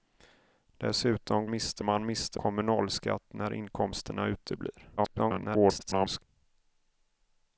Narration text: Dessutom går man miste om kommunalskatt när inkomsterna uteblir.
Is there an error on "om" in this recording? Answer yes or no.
yes